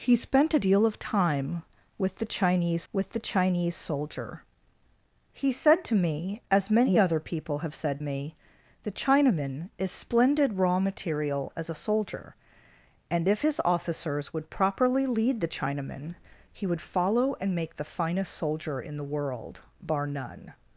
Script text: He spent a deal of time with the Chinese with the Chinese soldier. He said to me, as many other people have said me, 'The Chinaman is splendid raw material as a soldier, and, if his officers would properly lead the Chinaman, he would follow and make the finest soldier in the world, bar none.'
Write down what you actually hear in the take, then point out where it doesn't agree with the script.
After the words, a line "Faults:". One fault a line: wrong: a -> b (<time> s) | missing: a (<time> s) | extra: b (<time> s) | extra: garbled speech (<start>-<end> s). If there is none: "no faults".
He spent a deal of time with the Chinese with the Chinese soldier. He said to me, as many other people have said me, 'The Chinaman is splendid raw material as a soldier, and, if his officers would properly lead the Chinaman, he would follow and make the finest soldier in the world, bar none.'
Faults:
no faults